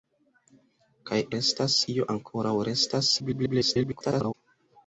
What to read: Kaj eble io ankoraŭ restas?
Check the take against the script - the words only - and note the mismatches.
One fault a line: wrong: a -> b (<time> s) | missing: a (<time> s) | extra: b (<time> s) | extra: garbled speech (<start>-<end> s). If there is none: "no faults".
wrong: eble -> restas (1.4 s)
extra: garbled speech (3.2-4.4 s)